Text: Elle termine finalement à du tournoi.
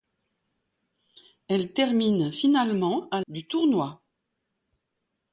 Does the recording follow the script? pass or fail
pass